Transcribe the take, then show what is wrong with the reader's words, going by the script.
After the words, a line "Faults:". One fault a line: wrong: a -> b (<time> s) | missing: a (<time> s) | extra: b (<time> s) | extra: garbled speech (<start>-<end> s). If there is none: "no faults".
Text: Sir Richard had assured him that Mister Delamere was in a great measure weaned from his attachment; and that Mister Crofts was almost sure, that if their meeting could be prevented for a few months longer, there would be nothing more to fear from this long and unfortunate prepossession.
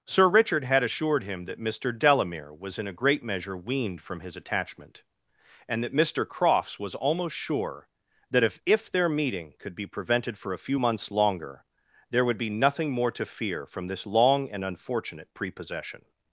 Sir Richard had assured him that Mister Delamere was in a great measure weaned from his attachment; and that Mister Crofts was almost sure, that if if their meeting could be prevented for a few months longer, there would be nothing more to fear from this long and unfortunate prepossession.
Faults:
extra: if (8.7 s)